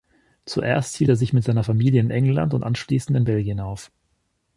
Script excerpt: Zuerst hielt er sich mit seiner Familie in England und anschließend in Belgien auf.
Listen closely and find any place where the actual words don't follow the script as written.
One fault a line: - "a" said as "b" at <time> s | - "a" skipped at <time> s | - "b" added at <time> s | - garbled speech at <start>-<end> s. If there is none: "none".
none